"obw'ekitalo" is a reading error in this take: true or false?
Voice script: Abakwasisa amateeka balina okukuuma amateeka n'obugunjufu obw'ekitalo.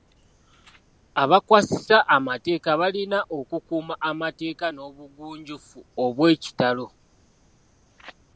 false